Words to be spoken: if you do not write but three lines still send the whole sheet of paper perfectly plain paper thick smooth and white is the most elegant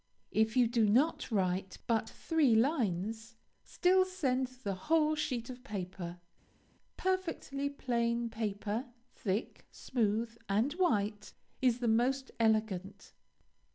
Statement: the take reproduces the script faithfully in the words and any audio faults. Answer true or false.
true